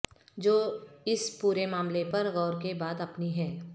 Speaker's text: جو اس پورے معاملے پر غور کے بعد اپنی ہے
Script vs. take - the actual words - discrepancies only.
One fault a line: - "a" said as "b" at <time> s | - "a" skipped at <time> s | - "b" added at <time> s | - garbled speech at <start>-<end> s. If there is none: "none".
none